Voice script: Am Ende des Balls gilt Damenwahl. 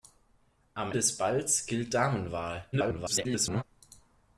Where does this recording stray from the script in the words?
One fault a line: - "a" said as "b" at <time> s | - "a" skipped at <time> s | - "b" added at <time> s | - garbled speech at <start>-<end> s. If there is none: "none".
- "Ende" skipped at 0.9 s
- garbled speech at 2.7-3.6 s